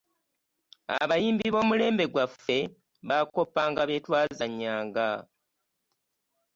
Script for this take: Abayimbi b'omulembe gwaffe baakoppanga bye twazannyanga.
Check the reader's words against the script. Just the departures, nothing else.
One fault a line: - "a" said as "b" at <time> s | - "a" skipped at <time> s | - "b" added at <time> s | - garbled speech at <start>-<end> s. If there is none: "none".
none